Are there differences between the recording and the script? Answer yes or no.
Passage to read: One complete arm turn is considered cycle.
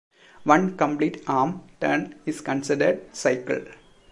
no